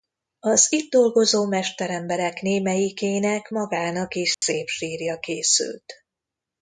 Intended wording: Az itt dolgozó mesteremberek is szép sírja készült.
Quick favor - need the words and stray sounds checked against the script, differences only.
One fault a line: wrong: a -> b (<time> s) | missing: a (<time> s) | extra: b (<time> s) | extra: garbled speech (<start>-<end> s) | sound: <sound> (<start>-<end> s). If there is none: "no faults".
extra: némelyikének magának (2.4 s)
sound: dropout (4.3-4.4 s)